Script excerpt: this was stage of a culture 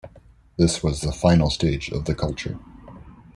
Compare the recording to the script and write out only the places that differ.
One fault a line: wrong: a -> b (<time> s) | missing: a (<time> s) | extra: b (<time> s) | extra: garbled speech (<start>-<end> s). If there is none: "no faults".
extra: the final (1.0 s)
wrong: a -> the (2.0 s)